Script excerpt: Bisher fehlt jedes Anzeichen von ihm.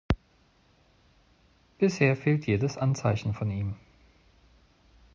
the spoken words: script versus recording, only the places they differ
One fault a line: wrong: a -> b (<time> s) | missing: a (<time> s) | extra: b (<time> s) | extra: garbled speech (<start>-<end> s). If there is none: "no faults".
no faults